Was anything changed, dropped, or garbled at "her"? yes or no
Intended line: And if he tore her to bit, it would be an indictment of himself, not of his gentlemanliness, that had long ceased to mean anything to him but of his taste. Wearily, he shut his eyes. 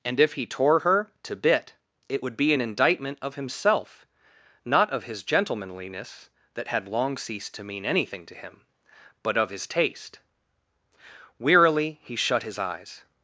no